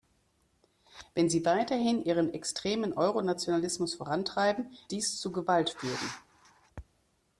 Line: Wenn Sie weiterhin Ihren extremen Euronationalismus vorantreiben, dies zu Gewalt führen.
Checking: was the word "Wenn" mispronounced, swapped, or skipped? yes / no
no